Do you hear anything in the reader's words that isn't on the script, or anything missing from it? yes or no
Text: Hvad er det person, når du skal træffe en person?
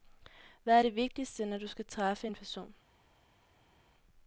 yes